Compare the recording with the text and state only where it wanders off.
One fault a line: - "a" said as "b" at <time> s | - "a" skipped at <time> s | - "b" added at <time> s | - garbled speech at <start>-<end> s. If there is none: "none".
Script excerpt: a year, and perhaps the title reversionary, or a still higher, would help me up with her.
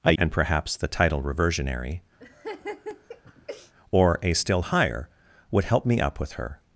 - "year" skipped at 0.1 s